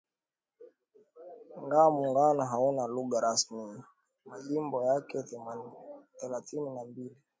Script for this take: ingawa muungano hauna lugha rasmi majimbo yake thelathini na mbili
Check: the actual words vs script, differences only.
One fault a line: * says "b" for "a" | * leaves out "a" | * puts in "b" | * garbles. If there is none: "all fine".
all fine